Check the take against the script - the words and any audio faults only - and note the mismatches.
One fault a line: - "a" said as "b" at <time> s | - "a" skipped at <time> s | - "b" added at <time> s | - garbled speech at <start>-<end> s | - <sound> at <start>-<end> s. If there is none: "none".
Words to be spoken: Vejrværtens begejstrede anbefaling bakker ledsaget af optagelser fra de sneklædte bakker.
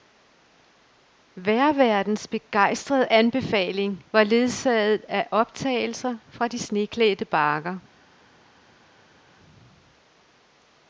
- "bakker" said as "var" at 4.1 s